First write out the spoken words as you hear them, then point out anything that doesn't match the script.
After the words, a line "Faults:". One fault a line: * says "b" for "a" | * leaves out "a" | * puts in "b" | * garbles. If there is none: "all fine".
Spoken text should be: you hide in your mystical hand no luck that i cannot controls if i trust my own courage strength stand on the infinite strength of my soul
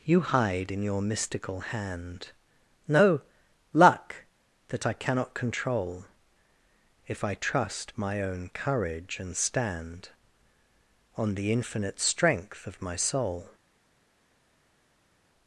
you hide in your mystical hand no luck that i cannot control if i trust my own courage and stand on the infinite strength of my soul
Faults:
* says "control" for "controls"
* says "and" for "strength"